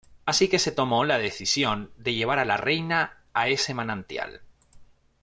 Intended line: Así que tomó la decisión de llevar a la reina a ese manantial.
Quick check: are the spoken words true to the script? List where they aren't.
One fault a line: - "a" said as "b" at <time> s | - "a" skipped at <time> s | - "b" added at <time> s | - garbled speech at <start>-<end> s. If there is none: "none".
- "se" added at 0.6 s